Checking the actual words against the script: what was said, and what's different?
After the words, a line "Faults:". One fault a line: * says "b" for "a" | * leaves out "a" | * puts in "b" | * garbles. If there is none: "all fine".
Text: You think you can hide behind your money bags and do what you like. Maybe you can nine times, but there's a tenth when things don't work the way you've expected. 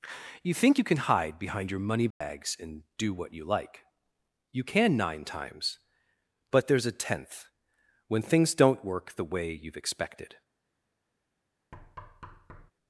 You think you can hide behind your money bags and do what you like. you can nine times, but there's a tenth when things don't work the way you've expected.
Faults:
* leaves out "Maybe"